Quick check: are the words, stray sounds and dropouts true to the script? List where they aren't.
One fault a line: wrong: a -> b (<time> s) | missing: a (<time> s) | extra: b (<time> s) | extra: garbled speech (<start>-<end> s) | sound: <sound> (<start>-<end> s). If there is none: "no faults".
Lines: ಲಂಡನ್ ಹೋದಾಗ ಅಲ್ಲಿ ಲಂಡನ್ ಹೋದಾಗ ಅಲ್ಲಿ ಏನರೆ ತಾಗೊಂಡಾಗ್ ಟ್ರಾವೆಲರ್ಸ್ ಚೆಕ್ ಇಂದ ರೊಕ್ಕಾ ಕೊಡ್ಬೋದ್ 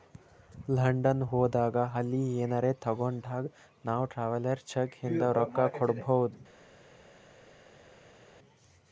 missing: ಲಂಡನ್ ಹೋದಾಗ ಅಲ್ಲಿ (2.2 s)
extra: ನಾವ್ (3.8 s)